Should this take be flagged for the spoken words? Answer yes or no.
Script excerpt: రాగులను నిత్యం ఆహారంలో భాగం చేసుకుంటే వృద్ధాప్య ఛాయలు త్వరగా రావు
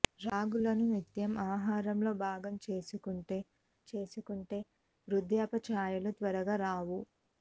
yes